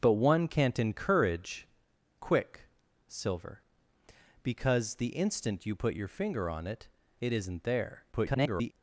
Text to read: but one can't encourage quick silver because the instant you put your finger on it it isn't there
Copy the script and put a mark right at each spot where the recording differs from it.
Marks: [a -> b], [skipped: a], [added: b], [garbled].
but one can't encourage quick silver because the instant you put your finger on it it isn't there [garbled]